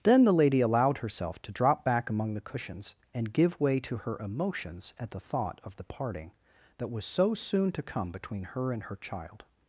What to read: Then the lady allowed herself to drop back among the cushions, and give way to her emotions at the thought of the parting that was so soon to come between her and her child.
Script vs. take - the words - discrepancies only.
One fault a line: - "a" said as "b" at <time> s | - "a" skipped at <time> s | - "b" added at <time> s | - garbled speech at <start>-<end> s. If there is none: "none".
none